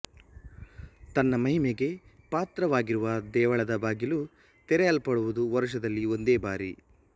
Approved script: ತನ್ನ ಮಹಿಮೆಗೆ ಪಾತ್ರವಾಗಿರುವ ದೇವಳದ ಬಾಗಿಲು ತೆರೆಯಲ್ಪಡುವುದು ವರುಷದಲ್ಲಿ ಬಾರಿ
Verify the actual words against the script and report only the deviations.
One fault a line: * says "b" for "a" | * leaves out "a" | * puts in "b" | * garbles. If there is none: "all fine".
* puts in "ಒಂದೇ"